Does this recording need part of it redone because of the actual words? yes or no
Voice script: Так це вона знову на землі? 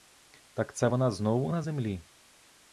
no